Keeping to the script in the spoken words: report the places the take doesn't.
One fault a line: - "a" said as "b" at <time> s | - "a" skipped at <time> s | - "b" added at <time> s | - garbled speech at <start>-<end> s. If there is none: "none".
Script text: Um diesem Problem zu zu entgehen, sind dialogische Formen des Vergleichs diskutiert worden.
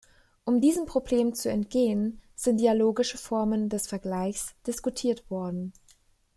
- "zu" skipped at 1.5 s